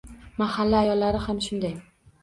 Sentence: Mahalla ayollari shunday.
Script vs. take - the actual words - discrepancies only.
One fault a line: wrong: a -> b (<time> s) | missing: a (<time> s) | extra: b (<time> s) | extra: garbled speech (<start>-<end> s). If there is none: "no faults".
extra: ham (1.3 s)